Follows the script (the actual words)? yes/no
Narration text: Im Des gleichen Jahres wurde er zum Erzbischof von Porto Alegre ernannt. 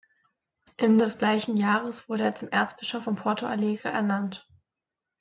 yes